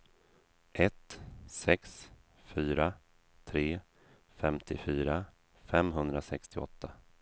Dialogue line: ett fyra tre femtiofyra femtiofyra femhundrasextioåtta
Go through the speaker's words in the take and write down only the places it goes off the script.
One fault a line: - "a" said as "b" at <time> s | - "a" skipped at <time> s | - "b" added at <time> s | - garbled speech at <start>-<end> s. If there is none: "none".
- "sex" added at 1.5 s
- "femtiofyra" skipped at 5.2 s